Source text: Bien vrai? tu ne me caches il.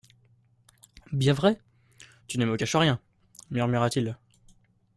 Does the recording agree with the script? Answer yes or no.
no